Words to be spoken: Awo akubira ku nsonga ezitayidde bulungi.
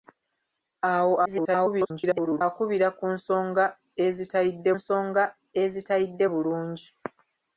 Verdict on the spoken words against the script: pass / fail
fail